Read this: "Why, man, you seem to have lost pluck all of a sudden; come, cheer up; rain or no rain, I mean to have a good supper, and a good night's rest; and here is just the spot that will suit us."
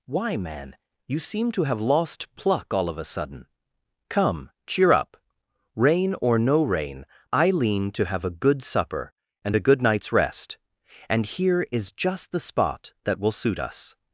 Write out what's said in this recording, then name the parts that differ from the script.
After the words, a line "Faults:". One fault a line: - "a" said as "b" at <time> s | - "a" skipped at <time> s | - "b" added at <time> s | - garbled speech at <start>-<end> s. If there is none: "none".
"Why, man, you seem to have lost pluck all of a sudden; come, cheer up; rain or no rain, I lean to have a good supper, and a good night's rest; and here is just the spot that will suit us."
Faults:
- "mean" said as "lean" at 7.5 s